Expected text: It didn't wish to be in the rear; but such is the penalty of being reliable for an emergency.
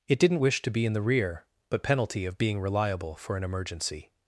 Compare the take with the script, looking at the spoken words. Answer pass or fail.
fail